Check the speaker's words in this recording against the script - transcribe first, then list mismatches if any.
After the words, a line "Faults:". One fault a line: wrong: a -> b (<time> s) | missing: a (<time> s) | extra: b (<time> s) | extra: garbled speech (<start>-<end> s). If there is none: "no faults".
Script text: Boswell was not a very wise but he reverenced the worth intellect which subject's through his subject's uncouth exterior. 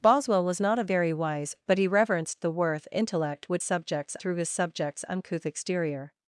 Boswell was not a very wise but he reverenced the worth intellect which subject's through his subject's uncouth exterior.
Faults:
no faults